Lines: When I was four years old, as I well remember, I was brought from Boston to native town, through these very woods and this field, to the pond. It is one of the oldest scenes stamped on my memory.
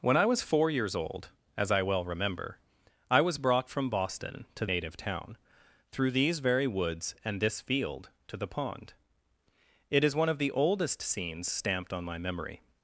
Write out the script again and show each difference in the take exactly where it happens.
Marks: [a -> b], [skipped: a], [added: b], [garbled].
When I was four years old, as I well remember, I was brought from Boston to native town, through these very woods and this field, to the pond. It is one of the oldest scenes stamped on my memory.